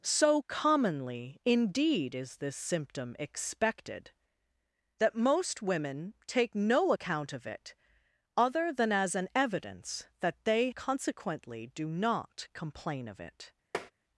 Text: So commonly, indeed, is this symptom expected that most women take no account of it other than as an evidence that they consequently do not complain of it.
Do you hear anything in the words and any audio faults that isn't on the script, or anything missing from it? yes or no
yes